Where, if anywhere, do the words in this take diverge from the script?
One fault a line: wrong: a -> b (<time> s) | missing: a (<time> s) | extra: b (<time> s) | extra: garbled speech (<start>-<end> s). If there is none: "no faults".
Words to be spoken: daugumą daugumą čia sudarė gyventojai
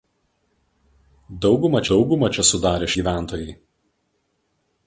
no faults